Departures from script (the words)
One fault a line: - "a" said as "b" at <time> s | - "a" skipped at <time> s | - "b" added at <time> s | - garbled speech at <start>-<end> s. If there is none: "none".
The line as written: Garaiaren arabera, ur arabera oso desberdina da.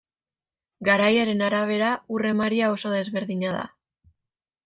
- "arabera" said as "emaria" at 2.3 s